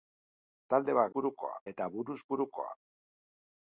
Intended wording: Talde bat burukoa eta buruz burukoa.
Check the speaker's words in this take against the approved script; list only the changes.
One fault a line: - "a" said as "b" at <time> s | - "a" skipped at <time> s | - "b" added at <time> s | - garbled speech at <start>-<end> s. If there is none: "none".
none